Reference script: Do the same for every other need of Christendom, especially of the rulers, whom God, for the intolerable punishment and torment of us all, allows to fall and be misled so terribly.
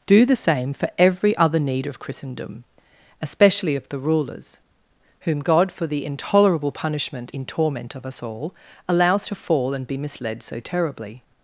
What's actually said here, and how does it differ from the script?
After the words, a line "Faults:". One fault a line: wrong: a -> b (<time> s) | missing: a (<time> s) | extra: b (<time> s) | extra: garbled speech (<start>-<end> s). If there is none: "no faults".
Do the same for every other need of Christendom, especially of the rulers, whom God, for the intolerable punishment in torment of us all, allows to fall and be misled so terribly.
Faults:
wrong: and -> in (7.3 s)